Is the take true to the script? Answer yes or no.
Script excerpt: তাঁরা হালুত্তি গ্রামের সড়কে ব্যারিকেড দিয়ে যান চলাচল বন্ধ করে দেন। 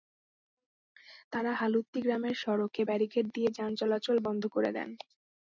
yes